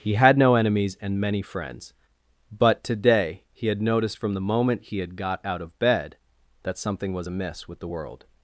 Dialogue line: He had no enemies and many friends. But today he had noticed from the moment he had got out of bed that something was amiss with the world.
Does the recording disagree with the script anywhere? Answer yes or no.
no